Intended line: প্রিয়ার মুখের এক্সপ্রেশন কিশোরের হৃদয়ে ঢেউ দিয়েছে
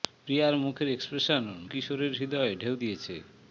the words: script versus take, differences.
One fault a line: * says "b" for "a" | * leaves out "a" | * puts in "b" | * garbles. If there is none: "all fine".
all fine